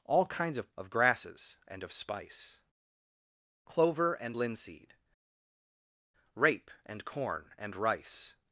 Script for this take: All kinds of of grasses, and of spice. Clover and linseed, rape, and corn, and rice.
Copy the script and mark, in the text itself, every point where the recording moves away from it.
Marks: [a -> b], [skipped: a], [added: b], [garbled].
All kinds of of grasses, and of spice. Clover and linseed, rape, and corn, and rice.